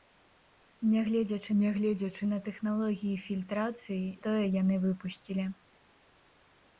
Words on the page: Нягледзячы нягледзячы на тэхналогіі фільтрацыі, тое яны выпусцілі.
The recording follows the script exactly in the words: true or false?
true